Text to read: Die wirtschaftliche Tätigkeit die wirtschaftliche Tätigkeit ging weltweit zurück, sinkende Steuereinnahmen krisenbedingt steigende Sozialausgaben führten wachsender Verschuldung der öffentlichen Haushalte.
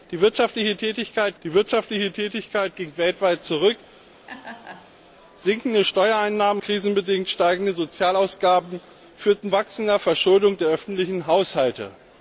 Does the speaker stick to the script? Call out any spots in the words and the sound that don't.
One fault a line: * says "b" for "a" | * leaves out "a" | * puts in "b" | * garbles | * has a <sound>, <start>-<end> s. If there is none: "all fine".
* has a laugh, 4.3-4.9 s